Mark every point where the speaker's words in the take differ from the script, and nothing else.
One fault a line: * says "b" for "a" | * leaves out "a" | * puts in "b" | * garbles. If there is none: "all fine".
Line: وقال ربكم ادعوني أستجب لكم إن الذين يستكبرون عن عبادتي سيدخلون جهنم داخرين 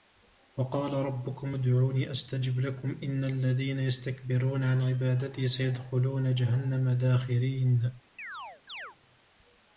all fine